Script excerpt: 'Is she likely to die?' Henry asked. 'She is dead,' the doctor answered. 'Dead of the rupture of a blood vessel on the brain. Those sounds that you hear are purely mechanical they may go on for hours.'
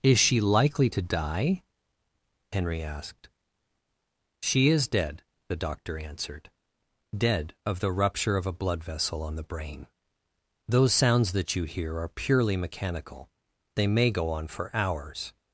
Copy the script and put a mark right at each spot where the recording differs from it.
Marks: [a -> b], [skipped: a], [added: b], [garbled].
'Is she likely to die?' Henry asked. 'She is dead,' the doctor answered. 'Dead of the rupture of a blood vessel on the brain. Those sounds that you hear are purely mechanical they may go on for hours.'